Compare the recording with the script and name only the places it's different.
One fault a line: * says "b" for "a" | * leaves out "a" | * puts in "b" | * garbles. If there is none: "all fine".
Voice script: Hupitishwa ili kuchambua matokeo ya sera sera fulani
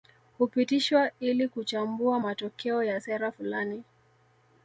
* leaves out "sera"